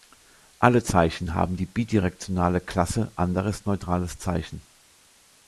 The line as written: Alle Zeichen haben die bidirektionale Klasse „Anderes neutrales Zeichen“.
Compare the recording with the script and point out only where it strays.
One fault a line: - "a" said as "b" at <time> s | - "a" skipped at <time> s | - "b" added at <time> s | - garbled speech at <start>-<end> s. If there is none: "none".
none